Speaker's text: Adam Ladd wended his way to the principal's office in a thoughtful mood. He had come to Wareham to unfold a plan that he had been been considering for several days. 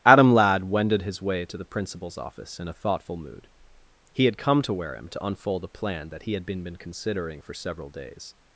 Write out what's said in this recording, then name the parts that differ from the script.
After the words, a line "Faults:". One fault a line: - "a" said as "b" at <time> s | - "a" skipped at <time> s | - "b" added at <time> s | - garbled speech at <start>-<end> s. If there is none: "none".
Adam Ladd wended his way to the principal's office in a thoughtful mood. He had come to Wareham to unfold a plan that he had been been considering for several days.
Faults:
none